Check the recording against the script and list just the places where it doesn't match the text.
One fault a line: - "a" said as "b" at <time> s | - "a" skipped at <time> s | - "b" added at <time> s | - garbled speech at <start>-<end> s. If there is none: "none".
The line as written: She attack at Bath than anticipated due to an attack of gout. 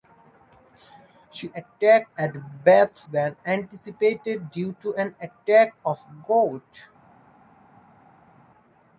none